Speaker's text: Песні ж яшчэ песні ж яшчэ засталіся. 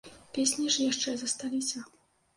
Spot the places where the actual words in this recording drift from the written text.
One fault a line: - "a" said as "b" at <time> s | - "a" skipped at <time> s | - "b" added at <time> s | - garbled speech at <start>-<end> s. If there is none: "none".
- "песні ж яшчэ" skipped at 1.1 s